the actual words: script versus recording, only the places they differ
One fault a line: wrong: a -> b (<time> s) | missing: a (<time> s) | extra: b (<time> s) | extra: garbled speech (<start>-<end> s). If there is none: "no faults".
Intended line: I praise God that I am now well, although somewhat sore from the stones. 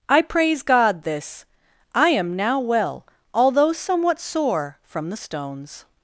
wrong: that -> this (1.0 s)